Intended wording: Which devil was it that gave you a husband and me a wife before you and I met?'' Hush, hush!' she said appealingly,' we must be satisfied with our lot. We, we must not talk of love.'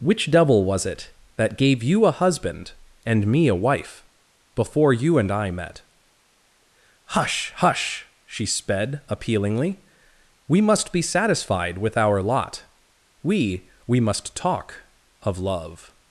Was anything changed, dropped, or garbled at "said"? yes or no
yes